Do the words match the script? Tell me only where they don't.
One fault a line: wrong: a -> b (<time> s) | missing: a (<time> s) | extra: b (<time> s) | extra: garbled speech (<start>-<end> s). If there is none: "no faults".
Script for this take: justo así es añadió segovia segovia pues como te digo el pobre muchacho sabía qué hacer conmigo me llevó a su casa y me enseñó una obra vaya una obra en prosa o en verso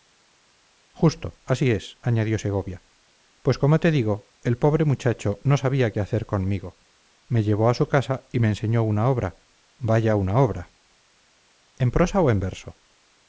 missing: segovia (2.8 s)
extra: no (5.4 s)